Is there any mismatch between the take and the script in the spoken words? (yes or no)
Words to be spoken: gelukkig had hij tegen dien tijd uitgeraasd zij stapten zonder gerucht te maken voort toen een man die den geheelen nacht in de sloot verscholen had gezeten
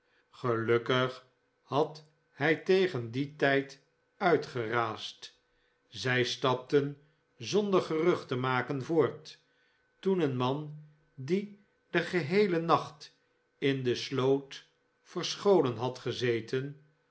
no